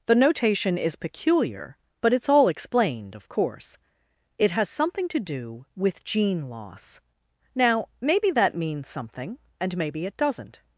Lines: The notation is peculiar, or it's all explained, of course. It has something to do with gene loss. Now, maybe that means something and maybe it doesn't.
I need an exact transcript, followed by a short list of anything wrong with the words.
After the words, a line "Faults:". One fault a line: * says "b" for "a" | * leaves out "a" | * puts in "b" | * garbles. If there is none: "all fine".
The notation is peculiar, but it's all explained, of course. It has something to do with gene loss. Now, maybe that means something and maybe it doesn't.
Faults:
* says "but" for "or"